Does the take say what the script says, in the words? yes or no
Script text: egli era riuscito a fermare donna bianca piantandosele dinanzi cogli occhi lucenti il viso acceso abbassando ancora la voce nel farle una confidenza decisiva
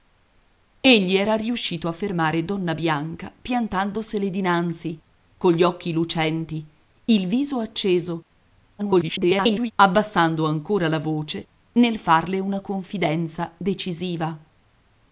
no